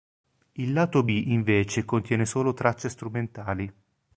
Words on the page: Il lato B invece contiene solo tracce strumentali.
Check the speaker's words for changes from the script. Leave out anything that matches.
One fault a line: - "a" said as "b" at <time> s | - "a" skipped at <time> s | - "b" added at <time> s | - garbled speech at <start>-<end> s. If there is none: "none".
none